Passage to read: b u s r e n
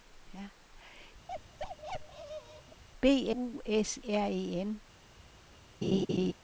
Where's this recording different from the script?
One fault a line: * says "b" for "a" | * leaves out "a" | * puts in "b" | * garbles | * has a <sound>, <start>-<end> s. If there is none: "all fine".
* has a bark, 1.3-2.8 s
* has a laugh, 5.8-6.3 s